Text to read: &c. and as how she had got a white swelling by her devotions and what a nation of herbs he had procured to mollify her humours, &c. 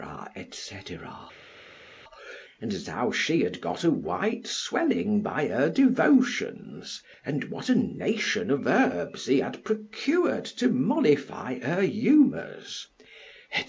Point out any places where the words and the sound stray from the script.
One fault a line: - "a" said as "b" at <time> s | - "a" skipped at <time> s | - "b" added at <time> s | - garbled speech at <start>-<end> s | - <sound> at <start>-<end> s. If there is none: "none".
none